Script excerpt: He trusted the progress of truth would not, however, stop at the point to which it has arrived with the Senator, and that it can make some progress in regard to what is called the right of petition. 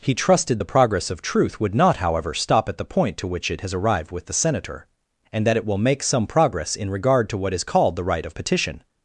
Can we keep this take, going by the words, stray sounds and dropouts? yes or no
no